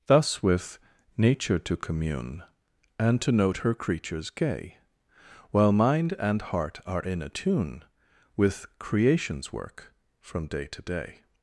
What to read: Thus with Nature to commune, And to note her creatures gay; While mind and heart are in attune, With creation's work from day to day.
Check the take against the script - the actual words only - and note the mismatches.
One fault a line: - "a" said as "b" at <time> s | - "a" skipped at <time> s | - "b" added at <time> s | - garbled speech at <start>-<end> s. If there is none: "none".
none